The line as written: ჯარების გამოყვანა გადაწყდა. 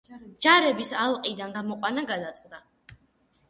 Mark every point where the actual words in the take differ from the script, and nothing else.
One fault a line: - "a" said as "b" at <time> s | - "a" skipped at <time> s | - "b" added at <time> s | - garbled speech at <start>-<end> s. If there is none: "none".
- "ალყიდან" added at 1.0 s